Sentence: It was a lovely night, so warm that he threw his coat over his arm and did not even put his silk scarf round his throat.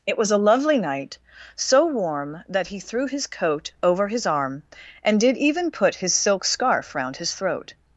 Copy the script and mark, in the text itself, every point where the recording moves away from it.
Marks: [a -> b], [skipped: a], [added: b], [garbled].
It was a lovely night, so warm that he threw his coat over his arm and did [skipped: not] even put his silk scarf round his throat.